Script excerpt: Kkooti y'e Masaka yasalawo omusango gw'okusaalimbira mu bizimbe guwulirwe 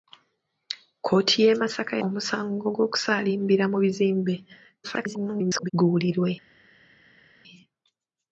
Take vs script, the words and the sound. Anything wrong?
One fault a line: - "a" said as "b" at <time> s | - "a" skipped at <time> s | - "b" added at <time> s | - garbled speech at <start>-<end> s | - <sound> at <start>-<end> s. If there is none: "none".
- "yasalawo" skipped at 1.9 s
- garbled speech at 4.8-5.7 s